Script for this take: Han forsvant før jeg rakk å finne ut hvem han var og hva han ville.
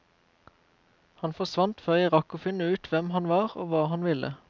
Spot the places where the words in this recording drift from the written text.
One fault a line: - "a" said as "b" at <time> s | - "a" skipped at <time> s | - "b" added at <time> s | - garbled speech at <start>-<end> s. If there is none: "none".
none